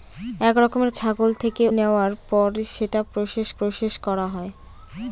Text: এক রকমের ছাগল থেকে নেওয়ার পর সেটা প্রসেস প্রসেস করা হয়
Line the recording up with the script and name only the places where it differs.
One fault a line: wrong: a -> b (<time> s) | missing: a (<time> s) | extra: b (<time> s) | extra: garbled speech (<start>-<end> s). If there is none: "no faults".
no faults